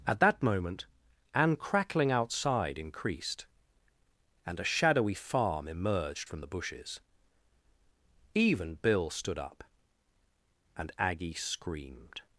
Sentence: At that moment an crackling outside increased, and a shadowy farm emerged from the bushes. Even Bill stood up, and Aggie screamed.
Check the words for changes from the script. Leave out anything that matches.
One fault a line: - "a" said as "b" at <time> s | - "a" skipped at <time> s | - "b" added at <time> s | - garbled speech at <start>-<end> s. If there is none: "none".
none